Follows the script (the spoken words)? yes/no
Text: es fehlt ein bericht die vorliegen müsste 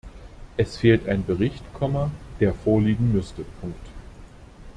no